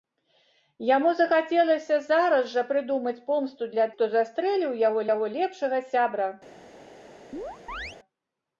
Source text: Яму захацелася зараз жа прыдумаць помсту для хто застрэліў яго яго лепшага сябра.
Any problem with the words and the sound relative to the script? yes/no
yes